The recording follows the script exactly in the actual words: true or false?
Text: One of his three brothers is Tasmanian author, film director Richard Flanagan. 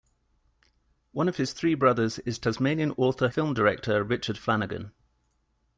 true